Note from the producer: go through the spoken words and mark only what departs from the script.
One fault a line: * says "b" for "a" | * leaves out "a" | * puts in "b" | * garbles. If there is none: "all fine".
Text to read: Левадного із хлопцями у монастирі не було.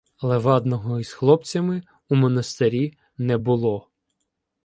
all fine